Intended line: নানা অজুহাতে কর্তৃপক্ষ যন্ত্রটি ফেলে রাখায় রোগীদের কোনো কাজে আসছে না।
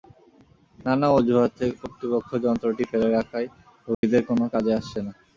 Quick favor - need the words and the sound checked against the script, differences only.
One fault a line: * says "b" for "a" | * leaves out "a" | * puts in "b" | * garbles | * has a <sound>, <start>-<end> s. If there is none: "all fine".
* has a dropout, 3.9-4.0 s